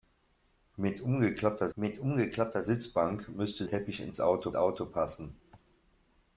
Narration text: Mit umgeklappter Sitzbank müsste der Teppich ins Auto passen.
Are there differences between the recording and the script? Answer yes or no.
yes